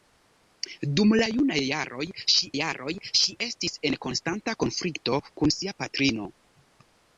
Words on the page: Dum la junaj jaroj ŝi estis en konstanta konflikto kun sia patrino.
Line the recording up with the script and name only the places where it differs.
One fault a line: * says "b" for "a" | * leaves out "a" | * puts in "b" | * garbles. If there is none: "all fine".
* puts in "jaroj ŝi"